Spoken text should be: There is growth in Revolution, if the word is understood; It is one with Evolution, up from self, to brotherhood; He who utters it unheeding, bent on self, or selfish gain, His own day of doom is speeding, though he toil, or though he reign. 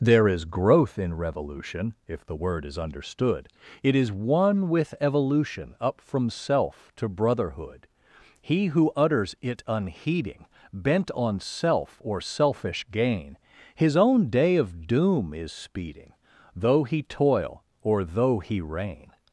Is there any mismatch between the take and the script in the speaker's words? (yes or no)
no